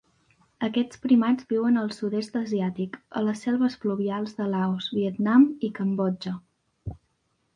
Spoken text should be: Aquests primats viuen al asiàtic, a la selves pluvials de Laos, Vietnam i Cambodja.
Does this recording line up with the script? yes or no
no